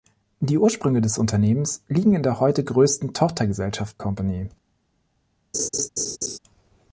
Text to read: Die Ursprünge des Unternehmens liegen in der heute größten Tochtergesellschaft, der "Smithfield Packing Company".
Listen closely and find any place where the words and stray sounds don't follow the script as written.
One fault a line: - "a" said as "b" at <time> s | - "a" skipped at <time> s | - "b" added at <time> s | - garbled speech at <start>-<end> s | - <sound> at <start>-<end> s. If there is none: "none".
- "der Smithfield Packing" skipped at 4.0 s
- laugh at 5.5-6.4 s